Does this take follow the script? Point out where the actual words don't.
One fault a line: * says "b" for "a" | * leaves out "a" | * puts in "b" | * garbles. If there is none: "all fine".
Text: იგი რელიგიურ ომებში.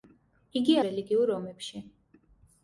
all fine